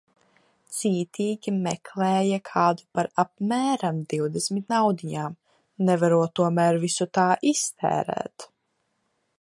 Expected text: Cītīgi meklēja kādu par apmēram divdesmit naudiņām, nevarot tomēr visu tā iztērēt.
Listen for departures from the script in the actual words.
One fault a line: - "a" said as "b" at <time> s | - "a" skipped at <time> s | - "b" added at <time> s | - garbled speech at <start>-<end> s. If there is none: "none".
none